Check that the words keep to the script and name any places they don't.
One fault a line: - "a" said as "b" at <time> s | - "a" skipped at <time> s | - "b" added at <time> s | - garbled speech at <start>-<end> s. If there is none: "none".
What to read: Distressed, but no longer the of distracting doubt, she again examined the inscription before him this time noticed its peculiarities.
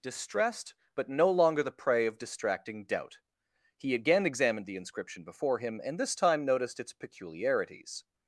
- "prey" added at 1.7 s
- "she" said as "he" at 3.8 s
- "and" added at 5.8 s